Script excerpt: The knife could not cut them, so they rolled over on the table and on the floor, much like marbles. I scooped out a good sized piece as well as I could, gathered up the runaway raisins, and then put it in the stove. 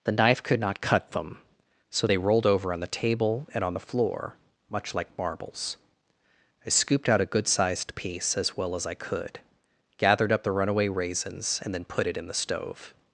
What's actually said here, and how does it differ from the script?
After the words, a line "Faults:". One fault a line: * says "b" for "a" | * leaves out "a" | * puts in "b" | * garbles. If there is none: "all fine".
The knife could not cut them, so they rolled over on the table and on the floor, much like marbles. I scooped out a good sized piece as well as I could, gathered up the runaway raisins, and then put it in the stove.
Faults:
all fine